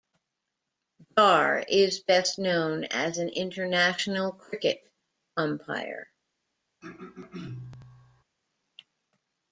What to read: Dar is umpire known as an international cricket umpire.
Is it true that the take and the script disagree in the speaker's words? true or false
true